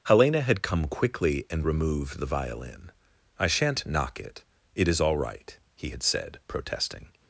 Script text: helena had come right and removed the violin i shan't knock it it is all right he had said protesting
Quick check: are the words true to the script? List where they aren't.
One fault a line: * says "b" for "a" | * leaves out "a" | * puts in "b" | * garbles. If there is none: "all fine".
* says "quickly" for "right"